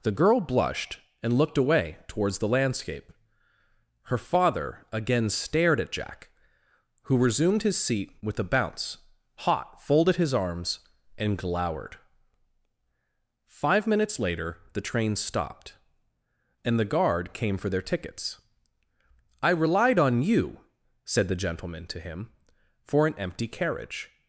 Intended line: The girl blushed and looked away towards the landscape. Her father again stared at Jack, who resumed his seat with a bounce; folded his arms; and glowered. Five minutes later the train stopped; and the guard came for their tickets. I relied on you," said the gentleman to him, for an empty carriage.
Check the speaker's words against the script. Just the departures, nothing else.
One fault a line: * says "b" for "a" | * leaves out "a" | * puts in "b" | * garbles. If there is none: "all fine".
* puts in "hot"